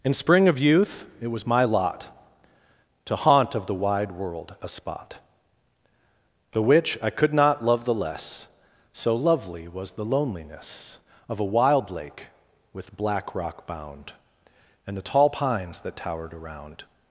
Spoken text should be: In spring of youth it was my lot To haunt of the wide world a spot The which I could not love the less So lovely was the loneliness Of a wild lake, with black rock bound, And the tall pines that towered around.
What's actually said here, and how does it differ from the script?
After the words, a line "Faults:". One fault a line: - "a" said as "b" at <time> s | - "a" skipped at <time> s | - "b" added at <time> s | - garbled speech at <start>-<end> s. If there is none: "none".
In spring of youth it was my lot To haunt of the wide world a spot The which I could not love the less So lovely was the loneliness Of a wild lake, with black rock bound, And the tall pines that towered around.
Faults:
none